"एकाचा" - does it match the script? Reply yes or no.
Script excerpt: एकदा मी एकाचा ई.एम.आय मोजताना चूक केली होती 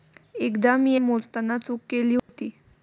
no